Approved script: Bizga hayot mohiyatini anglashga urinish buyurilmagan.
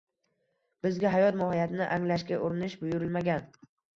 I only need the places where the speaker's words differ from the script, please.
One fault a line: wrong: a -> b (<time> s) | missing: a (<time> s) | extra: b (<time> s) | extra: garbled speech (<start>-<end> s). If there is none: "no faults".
no faults